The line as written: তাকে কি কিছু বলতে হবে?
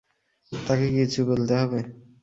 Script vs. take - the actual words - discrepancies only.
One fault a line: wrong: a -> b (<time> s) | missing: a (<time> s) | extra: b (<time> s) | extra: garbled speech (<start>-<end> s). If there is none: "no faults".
no faults